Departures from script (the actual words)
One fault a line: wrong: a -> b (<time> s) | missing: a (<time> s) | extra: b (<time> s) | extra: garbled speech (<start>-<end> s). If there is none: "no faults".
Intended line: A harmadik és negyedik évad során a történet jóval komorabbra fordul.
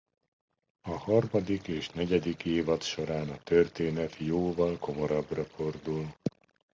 no faults